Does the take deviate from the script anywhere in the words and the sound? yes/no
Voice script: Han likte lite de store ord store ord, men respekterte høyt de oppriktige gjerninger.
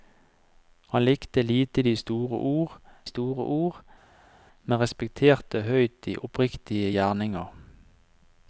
no